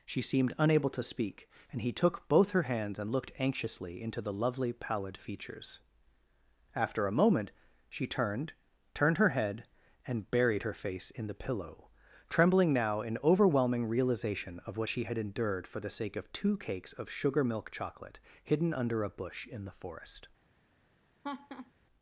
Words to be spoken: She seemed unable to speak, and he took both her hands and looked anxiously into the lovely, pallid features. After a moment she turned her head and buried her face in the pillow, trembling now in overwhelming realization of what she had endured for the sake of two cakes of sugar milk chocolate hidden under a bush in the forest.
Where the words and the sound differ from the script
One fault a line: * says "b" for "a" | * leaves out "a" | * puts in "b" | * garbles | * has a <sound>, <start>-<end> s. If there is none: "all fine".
* puts in "turned"
* has a laugh, 21.2-21.7 s